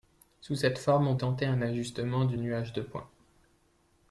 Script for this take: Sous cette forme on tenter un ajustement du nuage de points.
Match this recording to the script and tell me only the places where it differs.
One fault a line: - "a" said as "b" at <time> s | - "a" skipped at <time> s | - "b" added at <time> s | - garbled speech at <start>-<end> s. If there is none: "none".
none